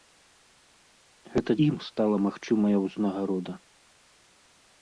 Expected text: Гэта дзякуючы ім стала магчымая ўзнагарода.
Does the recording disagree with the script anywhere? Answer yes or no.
yes